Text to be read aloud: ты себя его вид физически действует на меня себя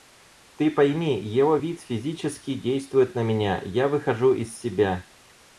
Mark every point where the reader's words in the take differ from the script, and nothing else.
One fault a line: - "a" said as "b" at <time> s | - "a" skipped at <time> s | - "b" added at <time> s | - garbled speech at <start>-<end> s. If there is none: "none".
- "себя" said as "пойми" at 0.7 s
- "я выхожу из" added at 3.6 s